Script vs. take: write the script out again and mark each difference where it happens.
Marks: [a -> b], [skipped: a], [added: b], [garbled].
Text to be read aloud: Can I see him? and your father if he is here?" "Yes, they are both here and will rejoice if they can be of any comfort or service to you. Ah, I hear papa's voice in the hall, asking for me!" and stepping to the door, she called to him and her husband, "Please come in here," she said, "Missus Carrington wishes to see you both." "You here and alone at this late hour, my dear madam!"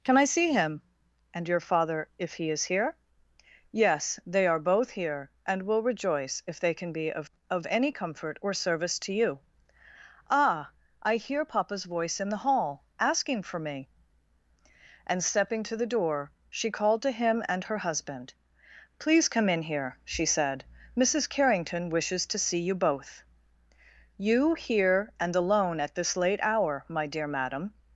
Can I see him? and your father if he is here?" "Yes, they are both here and will rejoice if they can be of [added: of] any comfort or service to you. Ah, I hear papa's voice in the hall, asking for me!" and stepping to the door, she called to him and her husband, "Please come in here," she said, "Missus Carrington wishes to see you both." "You here and alone at this late hour, my dear madam!"